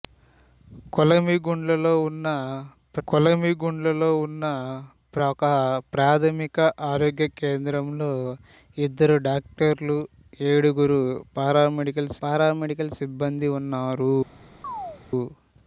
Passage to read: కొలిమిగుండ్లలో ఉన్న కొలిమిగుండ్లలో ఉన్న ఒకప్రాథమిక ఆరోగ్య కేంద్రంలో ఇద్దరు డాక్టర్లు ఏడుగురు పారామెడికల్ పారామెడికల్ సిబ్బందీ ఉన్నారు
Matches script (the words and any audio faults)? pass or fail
fail